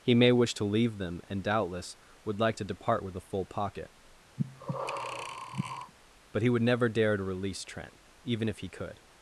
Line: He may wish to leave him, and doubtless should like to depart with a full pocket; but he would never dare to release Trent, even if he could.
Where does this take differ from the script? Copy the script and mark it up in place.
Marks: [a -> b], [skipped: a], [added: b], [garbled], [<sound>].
He may wish to leave [him, -> them] and doubtless [should -> would] like to depart with a full pocket; [breath] but he would never dare to release Trent, even if he could.